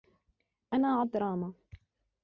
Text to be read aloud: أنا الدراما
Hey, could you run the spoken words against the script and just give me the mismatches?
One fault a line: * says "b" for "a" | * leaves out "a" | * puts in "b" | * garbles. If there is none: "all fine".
all fine